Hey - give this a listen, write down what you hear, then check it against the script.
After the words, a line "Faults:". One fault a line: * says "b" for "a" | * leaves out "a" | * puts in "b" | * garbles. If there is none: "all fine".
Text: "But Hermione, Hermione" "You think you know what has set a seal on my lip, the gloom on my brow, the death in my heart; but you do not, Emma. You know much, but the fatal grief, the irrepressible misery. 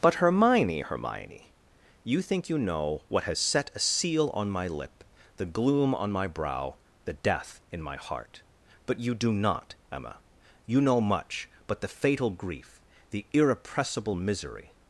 "But Hermione, Hermione" "You think you know what has set a seal on my lip, the gloom on my brow, the death in my heart; but you do not, Emma. You know much, but the fatal grief, the irrepressible misery.
Faults:
all fine